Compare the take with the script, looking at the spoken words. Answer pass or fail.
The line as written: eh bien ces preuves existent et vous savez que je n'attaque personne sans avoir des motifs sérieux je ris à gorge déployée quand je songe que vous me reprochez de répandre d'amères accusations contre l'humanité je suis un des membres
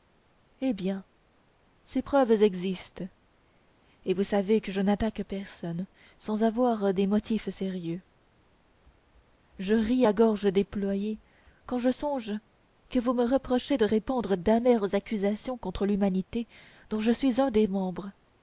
fail